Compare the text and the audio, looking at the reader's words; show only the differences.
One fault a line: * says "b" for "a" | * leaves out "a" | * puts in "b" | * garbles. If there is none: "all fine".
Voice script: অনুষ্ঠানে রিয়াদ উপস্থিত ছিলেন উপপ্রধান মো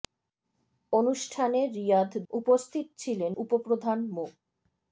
all fine